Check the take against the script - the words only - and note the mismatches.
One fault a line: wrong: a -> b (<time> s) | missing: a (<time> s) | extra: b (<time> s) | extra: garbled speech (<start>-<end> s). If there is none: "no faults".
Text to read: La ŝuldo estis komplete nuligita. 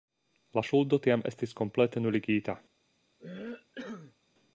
extra: tiam (1.1 s)